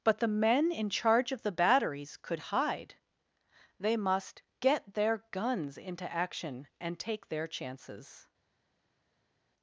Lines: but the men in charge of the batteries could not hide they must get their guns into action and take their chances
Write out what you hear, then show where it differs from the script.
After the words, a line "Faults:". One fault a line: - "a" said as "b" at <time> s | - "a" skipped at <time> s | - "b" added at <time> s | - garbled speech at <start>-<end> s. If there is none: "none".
but the men in charge of the batteries could hide they must get their guns into action and take their chances
Faults:
- "not" skipped at 2.4 s